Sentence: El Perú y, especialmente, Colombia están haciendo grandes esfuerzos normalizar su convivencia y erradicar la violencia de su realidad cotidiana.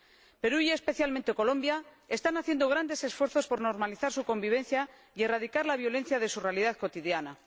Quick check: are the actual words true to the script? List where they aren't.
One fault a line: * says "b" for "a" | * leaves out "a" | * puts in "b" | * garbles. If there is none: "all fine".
* puts in "por"